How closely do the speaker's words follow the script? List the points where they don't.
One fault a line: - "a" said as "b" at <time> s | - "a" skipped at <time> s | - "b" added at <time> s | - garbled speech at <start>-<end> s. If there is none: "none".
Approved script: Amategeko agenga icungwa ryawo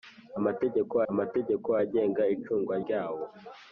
- "amategeko" added at 1.1 s